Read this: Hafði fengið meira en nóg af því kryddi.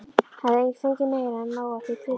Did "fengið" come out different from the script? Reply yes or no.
no